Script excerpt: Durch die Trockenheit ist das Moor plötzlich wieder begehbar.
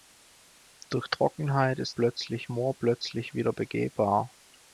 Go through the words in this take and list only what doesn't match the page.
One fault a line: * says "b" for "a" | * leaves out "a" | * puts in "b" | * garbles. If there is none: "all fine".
* leaves out "die"
* says "plötzlich" for "das"